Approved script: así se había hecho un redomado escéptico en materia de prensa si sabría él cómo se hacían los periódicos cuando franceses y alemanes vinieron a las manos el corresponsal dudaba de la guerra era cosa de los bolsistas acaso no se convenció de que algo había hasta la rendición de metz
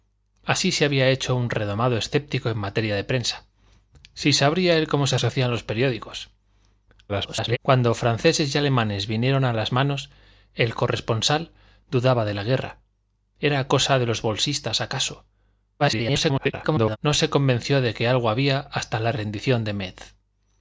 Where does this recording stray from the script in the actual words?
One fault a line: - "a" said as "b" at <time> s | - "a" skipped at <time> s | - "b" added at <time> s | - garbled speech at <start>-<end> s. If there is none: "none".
- "se" added at 5.2 s
- garbled speech at 7.1-7.6 s
- garbled speech at 15.8-17.0 s